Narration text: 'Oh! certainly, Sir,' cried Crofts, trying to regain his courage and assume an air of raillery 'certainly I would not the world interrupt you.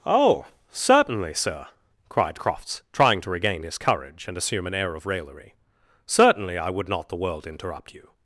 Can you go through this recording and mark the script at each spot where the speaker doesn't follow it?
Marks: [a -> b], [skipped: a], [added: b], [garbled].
'Oh! certainly, Sir,' cried Crofts, trying to regain his courage and assume an air of raillery 'certainly I would not the world interrupt you.